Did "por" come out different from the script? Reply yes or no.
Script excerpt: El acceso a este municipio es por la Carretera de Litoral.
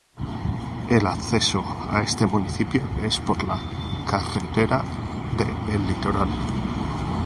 no